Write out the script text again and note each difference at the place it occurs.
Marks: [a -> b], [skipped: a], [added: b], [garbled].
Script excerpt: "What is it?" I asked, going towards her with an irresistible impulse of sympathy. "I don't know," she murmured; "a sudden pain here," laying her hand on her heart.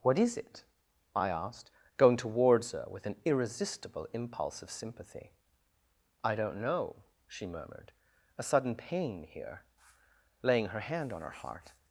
"What is it?" I asked, going towards her with an irresistible impulse of sympathy. "I don't know," she murmured; "a sudden pain here," laying her hand on her heart.